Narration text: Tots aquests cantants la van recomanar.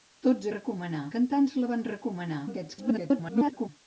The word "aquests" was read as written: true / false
false